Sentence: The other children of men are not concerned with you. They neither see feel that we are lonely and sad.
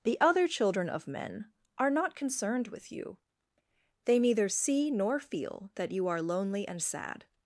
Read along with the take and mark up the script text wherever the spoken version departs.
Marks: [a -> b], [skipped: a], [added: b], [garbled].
The other children of men are not concerned with you. They neither see [added: nor] feel that [we -> you] are lonely and sad.